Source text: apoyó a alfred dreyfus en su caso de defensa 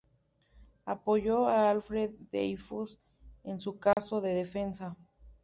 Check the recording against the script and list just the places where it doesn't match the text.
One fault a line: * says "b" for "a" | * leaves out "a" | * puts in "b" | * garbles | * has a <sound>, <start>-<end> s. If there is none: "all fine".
* has a dropout, 3.9-4.0 s